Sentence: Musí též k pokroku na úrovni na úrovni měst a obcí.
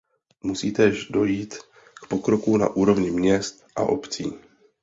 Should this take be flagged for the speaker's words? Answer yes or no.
yes